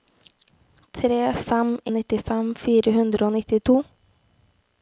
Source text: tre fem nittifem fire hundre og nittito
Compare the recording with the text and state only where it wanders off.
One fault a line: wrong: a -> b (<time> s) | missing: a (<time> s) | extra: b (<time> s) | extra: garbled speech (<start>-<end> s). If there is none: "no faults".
no faults